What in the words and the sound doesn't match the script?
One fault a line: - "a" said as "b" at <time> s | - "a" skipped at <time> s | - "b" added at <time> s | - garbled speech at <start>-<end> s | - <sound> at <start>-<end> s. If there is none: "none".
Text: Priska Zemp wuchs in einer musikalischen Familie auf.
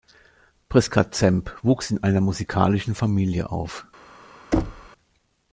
- thud at 4.5-4.9 s